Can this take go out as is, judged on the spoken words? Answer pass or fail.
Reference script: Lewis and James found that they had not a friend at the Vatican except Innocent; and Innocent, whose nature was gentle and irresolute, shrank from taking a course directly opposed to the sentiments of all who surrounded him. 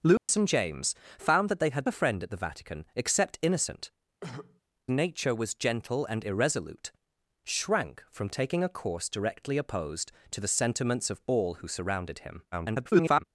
fail